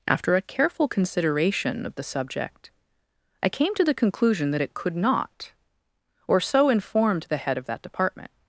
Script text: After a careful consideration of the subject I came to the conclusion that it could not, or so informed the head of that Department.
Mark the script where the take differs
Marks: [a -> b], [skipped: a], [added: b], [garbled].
After a careful consideration of the subject I came to the conclusion that it could not, or so informed the head of that Department.